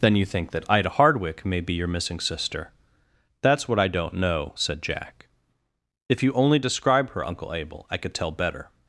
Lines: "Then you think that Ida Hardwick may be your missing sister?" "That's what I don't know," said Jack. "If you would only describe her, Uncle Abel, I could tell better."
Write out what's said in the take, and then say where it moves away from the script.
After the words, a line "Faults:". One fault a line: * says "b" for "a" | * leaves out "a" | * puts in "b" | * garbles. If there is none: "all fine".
"Then you think that Ida Hardwick may be your missing sister?" "That's what I don't know," said Jack. "If you only describe her, Uncle Abel, I could tell better."
Faults:
* leaves out "would"